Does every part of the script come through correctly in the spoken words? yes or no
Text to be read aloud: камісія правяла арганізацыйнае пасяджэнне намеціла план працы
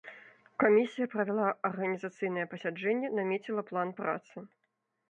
yes